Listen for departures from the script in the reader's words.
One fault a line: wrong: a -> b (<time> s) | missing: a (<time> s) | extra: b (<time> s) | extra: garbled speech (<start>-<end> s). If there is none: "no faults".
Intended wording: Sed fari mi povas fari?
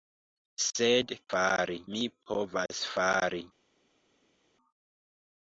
no faults